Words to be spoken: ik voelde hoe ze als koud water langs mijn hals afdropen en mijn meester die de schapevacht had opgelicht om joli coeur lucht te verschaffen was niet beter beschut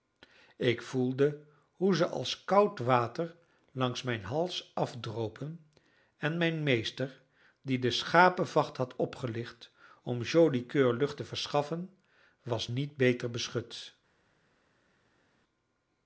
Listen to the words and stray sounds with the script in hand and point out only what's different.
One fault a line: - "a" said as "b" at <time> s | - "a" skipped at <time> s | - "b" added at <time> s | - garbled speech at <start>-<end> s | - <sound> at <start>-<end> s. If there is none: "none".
none